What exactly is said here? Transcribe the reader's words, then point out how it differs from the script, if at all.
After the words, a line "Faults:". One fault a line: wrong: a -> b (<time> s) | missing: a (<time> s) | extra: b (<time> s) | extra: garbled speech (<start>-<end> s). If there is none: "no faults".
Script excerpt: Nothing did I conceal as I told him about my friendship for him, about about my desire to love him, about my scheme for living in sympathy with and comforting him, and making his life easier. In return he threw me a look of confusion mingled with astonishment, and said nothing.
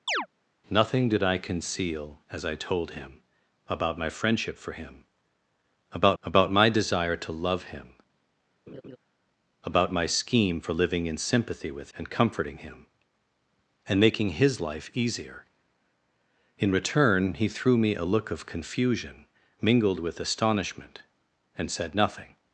Nothing did I conceal as I told him about my friendship for him, about about my desire to love him, about my scheme for living in sympathy with and comforting him, and making his life easier. In return he threw me a look of confusion mingled with astonishment, and said nothing.
Faults:
no faults